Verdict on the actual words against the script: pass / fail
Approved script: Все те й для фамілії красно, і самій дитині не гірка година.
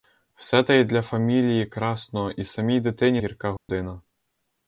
fail